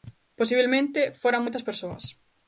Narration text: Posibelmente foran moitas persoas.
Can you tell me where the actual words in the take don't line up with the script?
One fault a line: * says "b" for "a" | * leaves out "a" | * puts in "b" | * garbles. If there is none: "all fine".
all fine